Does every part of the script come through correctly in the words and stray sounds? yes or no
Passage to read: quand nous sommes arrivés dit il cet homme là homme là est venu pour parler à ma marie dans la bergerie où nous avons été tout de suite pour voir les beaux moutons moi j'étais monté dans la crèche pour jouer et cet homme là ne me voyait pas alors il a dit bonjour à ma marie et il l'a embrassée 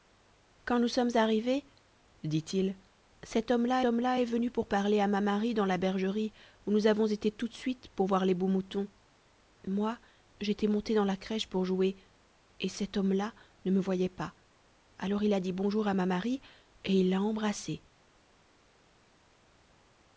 yes